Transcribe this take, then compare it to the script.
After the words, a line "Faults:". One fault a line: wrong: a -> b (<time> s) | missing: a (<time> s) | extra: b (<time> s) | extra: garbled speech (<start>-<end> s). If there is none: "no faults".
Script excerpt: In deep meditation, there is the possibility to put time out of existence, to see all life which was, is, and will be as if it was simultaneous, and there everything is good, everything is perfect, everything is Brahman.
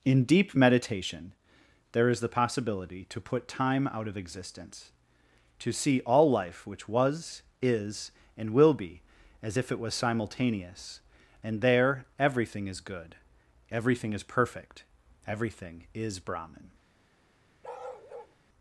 In deep meditation, there is the possibility to put time out of existence, to see all life which was, is, and will be as if it was simultaneous, and there everything is good, everything is perfect, everything is Brahman.
Faults:
no faults